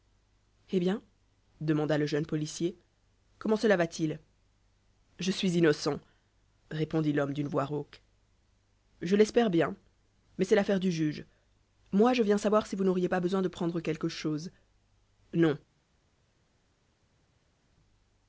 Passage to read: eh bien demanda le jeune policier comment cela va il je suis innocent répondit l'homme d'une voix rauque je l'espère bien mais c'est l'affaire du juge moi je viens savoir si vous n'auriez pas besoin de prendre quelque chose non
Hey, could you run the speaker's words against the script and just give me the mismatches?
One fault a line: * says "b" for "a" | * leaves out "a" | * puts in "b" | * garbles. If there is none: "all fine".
* puts in "t"